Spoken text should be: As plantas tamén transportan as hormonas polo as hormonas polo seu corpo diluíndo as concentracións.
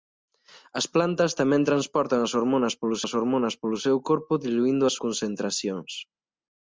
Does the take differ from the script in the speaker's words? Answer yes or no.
no